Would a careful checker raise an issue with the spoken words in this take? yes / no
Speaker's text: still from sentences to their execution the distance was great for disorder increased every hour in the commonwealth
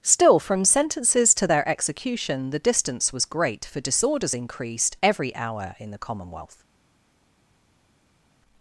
yes